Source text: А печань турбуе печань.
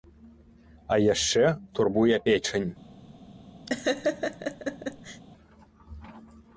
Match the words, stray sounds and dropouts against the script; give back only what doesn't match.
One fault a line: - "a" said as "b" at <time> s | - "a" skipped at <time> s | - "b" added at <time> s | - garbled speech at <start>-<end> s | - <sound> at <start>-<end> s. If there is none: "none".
- "печань" said as "яшчэ" at 1.1 s
- laugh at 3.7-5.2 s